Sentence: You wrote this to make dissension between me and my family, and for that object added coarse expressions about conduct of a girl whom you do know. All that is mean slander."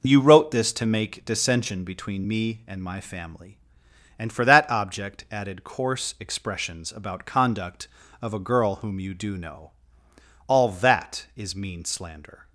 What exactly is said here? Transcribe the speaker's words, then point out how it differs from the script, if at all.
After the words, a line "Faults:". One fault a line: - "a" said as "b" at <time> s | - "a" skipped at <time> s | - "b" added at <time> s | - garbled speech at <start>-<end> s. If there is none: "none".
You wrote this to make dissension between me and my family, and for that object added coarse expressions about conduct of a girl whom you do know. All that is mean slander."
Faults:
none